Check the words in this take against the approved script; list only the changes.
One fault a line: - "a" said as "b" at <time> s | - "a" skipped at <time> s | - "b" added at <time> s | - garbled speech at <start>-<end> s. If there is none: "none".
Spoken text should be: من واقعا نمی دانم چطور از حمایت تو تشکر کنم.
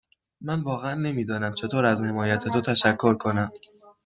none